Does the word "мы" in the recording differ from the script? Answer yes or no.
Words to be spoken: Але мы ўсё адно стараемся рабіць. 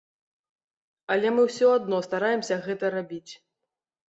no